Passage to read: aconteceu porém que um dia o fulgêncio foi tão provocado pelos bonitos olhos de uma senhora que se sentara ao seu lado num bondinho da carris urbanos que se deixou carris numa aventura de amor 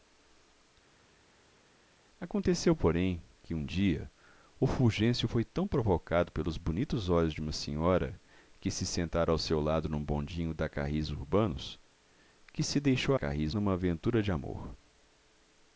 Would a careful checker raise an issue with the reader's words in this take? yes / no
no